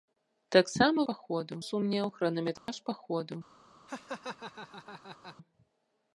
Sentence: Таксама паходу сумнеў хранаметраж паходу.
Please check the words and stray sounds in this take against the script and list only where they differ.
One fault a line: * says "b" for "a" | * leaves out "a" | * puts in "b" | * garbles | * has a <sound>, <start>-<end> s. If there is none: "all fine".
* has a dropout, 2.6-2.7 s
* has a laugh, 3.9-5.4 s